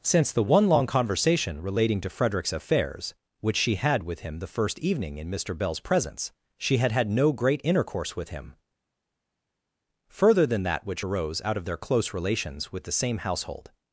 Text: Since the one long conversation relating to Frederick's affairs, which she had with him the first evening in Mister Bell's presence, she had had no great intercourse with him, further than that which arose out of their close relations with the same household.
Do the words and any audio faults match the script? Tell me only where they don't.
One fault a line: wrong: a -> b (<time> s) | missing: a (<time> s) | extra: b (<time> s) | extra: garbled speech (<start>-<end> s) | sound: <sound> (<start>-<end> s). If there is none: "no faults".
no faults